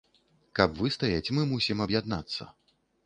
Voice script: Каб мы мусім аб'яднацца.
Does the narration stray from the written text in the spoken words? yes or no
yes